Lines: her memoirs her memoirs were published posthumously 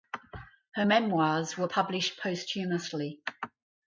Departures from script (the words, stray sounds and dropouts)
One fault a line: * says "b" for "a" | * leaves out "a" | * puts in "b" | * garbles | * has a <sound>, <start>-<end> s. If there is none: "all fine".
* leaves out "her memoirs"